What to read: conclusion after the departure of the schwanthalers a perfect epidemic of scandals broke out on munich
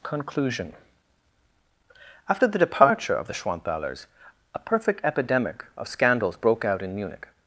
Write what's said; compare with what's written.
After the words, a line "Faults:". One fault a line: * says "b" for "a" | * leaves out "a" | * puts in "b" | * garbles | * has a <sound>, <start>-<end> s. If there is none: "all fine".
conclusion after the departure of the schwanthalers a perfect epidemic of scandals broke out in munich
Faults:
* says "in" for "on"